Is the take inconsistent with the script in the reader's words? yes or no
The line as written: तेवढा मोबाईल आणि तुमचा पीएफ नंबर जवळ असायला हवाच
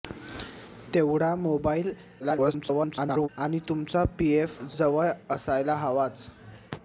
yes